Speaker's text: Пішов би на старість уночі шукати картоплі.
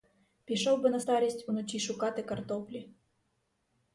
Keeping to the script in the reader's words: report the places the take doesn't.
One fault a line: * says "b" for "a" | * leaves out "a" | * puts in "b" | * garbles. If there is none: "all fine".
all fine